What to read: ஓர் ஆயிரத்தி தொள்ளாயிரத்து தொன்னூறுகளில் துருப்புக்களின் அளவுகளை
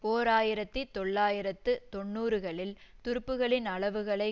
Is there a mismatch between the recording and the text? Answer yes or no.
no